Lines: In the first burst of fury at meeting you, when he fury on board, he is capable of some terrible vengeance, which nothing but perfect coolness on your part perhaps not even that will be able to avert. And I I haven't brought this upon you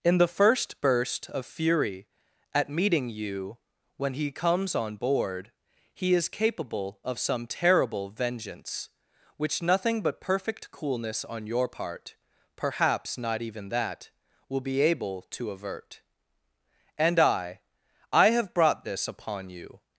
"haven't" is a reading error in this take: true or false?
true